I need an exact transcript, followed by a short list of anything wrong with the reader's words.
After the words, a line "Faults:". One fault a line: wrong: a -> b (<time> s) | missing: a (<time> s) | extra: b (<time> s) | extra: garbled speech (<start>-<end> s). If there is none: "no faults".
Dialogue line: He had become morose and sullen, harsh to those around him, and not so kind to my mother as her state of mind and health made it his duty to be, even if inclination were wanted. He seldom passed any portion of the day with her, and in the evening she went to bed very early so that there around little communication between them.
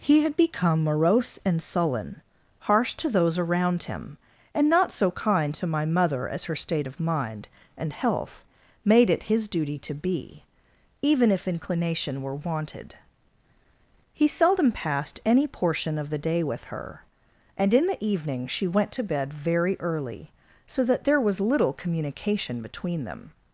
He had become morose and sullen, harsh to those around him, and not so kind to my mother as her state of mind and health made it his duty to be, even if inclination were wanted. He seldom passed any portion of the day with her, and in the evening she went to bed very early so that there was little communication between them.
Faults:
wrong: around -> was (21.2 s)